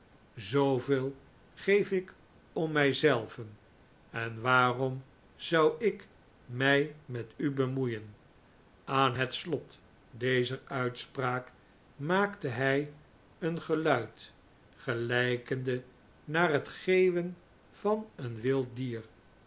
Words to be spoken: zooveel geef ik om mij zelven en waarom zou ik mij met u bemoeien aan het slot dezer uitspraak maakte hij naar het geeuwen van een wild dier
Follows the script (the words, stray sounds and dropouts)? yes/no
no